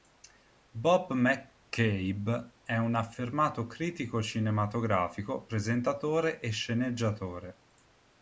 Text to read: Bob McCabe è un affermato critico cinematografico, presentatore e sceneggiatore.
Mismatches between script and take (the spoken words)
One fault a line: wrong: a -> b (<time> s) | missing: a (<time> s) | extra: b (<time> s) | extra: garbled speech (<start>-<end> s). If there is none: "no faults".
no faults